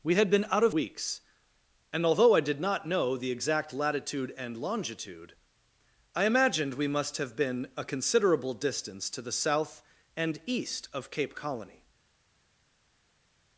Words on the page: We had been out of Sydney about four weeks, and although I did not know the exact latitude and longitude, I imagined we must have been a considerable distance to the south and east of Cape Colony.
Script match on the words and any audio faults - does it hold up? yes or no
no